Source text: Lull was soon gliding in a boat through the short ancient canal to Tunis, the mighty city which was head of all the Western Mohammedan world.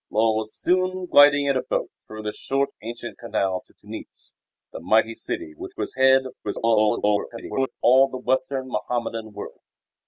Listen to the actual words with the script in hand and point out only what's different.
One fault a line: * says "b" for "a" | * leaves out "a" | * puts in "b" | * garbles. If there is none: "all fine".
* garbles